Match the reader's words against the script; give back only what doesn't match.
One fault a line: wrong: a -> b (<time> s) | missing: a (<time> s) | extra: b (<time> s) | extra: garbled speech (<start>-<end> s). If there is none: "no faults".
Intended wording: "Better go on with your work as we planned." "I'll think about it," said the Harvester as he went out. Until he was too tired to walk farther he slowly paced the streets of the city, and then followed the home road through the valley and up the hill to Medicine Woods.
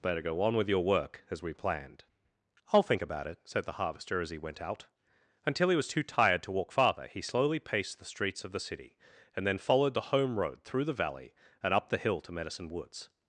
no faults